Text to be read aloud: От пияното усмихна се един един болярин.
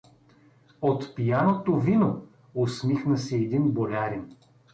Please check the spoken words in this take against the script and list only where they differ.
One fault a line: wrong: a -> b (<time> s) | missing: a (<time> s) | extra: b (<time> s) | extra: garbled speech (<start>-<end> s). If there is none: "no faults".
extra: вино (1.8 s)
missing: един (3.7 s)